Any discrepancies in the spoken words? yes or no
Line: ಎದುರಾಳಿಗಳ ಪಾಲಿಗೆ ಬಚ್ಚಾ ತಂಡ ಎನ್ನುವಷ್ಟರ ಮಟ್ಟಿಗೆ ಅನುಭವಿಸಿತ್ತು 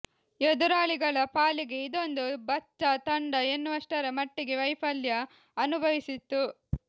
yes